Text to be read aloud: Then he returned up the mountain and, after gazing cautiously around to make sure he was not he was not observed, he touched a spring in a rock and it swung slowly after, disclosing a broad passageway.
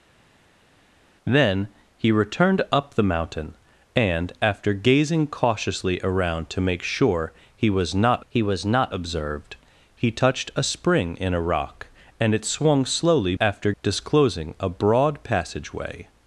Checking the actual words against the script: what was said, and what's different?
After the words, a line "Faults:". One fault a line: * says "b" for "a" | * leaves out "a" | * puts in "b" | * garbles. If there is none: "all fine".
Then he returned up the mountain and, after gazing cautiously around to make sure he was not he was not observed, he touched a spring in a rock and it swung slowly after, disclosing a broad passageway.
Faults:
all fine